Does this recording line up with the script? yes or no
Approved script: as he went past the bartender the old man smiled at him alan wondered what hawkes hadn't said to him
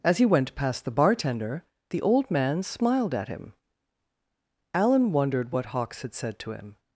no